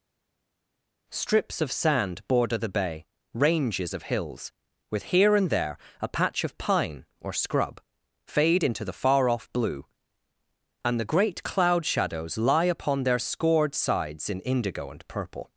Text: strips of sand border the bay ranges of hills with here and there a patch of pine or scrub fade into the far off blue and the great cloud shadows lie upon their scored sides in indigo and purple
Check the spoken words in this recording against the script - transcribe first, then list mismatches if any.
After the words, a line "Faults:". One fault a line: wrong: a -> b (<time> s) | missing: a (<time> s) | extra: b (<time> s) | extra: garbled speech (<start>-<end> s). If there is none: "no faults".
strips of sand border the bay ranges of hills with here and there a patch of pine or scrub fade into the far off blue and the great cloud shadows lie upon their scored sides in indigo and purple
Faults:
no faults